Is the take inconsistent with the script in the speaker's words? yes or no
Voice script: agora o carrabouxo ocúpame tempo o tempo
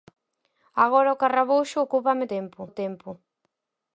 no